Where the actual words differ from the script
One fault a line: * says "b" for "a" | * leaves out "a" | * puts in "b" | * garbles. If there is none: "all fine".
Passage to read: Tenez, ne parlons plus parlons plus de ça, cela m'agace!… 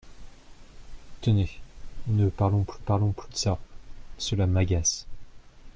all fine